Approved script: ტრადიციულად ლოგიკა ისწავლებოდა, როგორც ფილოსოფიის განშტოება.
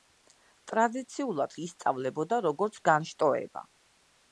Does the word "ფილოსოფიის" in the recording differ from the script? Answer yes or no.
yes